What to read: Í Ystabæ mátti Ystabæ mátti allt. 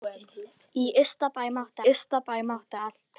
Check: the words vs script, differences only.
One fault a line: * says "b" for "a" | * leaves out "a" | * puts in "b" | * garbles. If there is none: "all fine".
all fine